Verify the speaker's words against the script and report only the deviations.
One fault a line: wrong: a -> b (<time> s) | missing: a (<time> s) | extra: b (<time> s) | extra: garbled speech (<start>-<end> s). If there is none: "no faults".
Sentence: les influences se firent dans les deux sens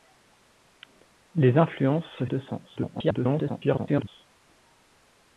missing: firent dans les (2.2 s)
extra: garbled speech (2.8-4.1 s)